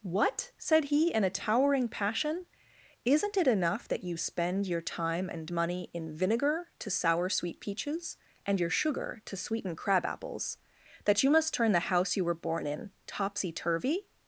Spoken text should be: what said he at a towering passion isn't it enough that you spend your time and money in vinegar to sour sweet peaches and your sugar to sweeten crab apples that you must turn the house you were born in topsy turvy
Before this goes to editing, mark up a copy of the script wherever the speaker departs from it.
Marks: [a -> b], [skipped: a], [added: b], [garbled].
what said he [at -> in] a towering passion isn't it enough that you spend your time and money in vinegar to sour sweet peaches and your sugar to sweeten crab apples that you must turn the house you were born in topsy turvy